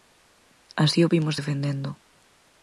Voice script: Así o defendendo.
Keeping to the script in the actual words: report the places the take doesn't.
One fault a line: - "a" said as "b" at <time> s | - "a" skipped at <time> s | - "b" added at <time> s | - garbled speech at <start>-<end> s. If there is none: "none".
- "vimos" added at 1.1 s